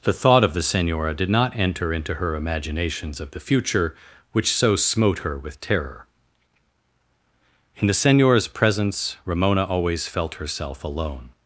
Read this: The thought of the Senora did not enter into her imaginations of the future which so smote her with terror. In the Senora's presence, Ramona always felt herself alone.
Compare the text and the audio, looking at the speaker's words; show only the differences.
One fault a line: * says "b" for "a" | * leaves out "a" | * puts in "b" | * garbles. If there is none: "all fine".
all fine